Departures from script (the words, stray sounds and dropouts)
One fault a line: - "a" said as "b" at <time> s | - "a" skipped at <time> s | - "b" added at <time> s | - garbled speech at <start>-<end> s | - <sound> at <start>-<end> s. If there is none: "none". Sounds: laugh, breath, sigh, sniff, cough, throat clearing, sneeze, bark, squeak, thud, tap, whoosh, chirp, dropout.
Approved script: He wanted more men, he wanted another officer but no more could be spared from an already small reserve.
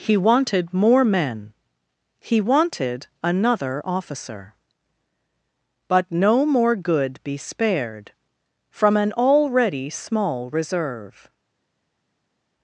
- "could" said as "good" at 6.8 s